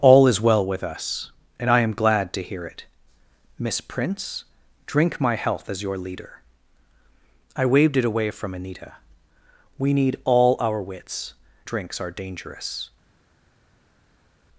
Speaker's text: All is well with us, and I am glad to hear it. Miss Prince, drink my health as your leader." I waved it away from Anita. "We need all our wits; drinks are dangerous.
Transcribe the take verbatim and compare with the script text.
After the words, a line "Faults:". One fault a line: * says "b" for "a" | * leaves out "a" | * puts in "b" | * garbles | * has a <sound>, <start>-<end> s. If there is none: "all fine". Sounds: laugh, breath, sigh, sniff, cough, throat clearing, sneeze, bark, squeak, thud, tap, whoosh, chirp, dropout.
All is well with us, and I am glad to hear it. Miss Prince, drink my health as your leader." I waved it away from Anita. "We need all our wits; drinks are dangerous.
Faults:
all fine